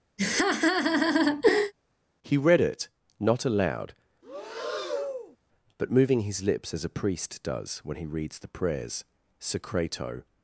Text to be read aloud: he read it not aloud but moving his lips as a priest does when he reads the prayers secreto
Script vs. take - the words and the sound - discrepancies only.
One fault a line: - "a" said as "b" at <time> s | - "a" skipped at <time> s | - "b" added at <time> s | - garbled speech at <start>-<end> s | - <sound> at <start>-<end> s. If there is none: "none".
- laugh at 0.2-1.7 s
- breath at 4.2-5.4 s